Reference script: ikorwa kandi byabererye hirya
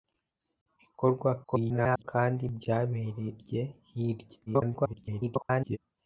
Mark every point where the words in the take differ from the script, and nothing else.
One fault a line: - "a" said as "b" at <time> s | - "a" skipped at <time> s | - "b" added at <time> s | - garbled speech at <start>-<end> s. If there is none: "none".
- garbled speech at 1.4-2.0 s
- garbled speech at 4.5-5.8 s